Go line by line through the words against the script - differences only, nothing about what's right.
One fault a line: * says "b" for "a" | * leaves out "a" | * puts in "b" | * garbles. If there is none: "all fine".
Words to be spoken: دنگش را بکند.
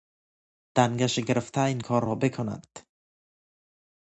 * puts in "گرفته این کار"